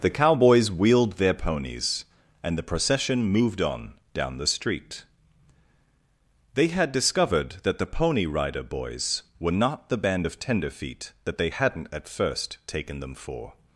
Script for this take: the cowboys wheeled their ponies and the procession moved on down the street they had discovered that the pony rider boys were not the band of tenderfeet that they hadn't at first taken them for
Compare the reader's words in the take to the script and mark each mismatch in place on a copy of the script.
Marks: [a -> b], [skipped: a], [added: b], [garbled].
the cowboys wheeled their ponies and the procession moved on down the street they had discovered that the pony rider boys were not the band of tenderfeet that they hadn't at first taken them for